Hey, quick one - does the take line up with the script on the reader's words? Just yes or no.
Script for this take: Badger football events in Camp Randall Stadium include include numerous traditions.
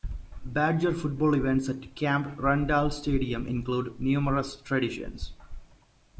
no